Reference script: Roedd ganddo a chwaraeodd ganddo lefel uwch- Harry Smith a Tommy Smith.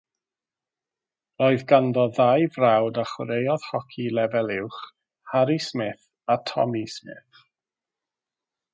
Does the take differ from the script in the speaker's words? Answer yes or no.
yes